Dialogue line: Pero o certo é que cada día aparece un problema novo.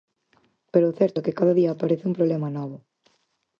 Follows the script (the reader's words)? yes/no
yes